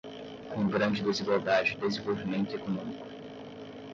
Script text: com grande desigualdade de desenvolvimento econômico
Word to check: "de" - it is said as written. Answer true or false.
false